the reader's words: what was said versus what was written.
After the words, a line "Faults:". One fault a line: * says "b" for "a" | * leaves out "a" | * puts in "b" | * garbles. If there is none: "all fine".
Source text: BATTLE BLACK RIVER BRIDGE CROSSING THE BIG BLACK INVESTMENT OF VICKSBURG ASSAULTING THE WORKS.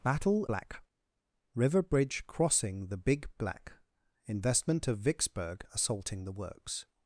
BATTLE BLACK RIVER BRIDGE CROSSING THE BIG BLACK INVESTMENT OF VICKSBURG ASSAULTING THE WORKS.
Faults:
all fine